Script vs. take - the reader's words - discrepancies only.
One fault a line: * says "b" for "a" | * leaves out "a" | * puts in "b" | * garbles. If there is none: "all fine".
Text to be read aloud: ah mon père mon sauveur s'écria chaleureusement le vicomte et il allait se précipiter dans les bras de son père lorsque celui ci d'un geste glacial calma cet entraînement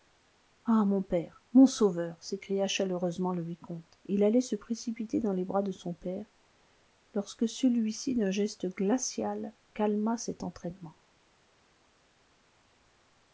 all fine